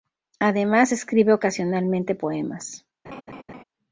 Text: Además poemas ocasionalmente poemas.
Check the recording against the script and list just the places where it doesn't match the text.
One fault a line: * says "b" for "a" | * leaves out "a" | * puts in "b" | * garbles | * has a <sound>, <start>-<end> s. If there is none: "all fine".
* says "escribe" for "poemas"
* has a laugh, 3.0-3.6 s